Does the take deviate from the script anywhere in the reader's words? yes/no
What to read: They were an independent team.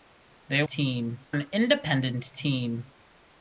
yes